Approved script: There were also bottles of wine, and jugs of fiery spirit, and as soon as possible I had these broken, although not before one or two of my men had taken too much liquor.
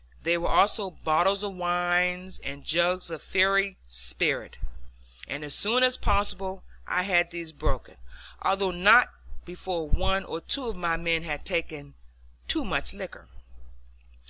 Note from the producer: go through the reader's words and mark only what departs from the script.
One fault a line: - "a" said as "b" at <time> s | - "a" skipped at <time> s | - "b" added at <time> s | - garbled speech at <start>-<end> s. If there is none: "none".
none